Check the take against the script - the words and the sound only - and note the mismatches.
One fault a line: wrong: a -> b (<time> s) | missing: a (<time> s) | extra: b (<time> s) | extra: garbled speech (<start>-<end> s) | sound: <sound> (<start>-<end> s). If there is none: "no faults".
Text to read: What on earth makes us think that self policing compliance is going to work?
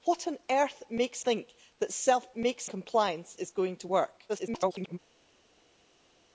missing: us (1.2 s)
wrong: policing -> makes (2.3 s)
extra: garbled speech (4.3-5.0 s)